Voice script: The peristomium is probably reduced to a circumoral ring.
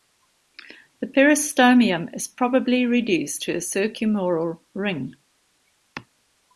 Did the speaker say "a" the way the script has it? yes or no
yes